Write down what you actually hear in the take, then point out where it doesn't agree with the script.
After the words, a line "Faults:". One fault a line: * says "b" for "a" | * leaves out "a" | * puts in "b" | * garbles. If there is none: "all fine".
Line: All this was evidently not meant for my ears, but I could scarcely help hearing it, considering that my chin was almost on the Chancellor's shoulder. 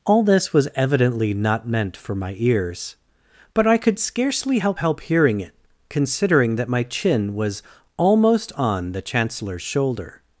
All this was evidently not meant for my ears, but I could scarcely help help hearing it, considering that my chin was almost on the Chancellor's shoulder.
Faults:
* puts in "help"